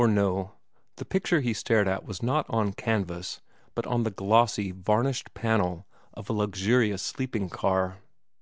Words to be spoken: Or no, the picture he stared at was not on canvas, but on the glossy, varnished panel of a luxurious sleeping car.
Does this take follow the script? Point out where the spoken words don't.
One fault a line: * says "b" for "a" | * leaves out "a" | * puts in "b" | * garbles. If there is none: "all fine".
all fine